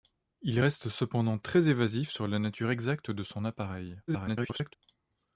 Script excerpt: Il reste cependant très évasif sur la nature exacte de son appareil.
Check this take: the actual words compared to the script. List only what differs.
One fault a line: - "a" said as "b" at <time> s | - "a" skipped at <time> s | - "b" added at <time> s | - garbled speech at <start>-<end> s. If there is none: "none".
- garbled speech at 4.1-4.8 s